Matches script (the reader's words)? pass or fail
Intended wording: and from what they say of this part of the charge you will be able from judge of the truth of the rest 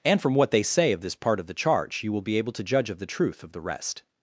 fail